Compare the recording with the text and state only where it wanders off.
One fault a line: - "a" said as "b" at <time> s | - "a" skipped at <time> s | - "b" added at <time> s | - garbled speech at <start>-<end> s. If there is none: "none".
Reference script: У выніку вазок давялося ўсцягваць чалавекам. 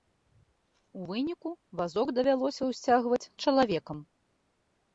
none